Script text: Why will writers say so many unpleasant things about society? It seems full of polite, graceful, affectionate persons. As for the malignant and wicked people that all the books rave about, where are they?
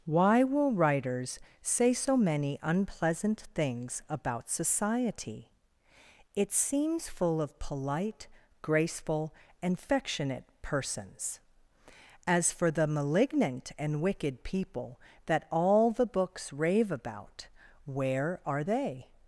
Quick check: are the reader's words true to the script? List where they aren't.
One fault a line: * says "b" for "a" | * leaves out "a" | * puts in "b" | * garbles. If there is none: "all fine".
* puts in "and"